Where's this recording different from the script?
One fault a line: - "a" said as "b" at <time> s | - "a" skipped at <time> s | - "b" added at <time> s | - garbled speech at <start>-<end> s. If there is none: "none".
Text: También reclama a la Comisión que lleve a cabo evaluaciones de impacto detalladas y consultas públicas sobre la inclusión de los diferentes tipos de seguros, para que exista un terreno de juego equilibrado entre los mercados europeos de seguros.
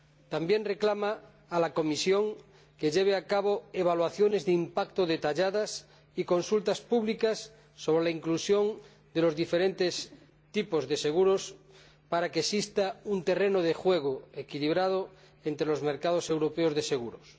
none